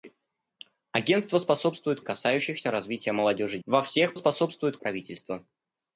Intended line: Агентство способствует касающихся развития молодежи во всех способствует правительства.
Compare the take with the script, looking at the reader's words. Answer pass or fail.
pass